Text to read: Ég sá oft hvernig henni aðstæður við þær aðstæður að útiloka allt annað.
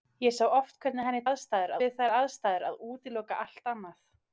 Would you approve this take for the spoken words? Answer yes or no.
yes